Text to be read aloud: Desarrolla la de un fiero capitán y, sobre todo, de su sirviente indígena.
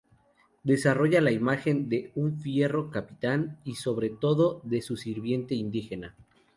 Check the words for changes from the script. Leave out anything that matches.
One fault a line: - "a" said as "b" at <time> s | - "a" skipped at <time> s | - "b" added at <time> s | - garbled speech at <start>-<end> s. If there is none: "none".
- "imagen" added at 1.3 s